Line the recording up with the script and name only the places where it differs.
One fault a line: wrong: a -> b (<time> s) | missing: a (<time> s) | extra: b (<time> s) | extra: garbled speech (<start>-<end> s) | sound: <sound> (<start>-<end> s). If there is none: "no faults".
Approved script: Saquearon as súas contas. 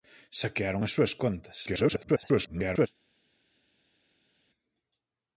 extra: garbled speech (1.7-2.9 s)